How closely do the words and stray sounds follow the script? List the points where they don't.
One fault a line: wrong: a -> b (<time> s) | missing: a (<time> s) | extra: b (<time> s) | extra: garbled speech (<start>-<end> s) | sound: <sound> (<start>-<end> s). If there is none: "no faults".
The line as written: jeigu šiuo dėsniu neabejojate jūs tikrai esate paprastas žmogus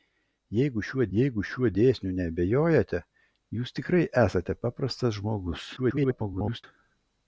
extra: jeigu šiuo (1.2 s)
extra: garbled speech (5.8-6.6 s)